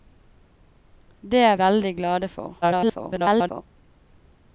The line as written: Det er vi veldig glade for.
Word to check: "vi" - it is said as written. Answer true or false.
false